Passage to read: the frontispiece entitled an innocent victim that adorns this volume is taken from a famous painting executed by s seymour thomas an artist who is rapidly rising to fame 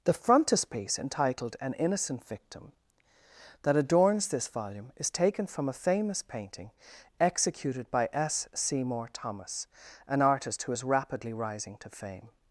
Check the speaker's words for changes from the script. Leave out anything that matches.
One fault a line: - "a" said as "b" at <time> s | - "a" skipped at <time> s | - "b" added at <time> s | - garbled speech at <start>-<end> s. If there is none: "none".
none